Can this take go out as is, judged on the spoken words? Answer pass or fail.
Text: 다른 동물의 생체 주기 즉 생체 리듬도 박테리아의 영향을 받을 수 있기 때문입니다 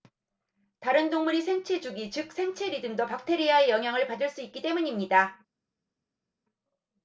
pass